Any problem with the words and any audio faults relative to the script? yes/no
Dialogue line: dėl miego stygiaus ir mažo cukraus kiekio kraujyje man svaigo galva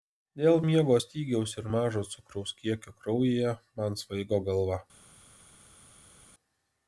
no